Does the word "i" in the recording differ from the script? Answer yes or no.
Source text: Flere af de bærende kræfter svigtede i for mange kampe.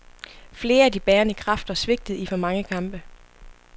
no